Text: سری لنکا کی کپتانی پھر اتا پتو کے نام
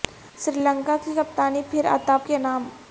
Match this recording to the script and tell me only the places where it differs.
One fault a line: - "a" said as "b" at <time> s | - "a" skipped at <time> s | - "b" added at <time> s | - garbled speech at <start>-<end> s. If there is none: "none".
- "پتو" skipped at 2.2 s